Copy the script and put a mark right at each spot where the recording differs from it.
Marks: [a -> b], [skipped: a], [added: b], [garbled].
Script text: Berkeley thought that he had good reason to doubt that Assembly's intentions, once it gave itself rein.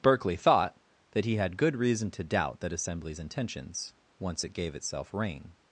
Berkeley thought that he had good reason to doubt that Assembly's intentions, once it gave itself rein.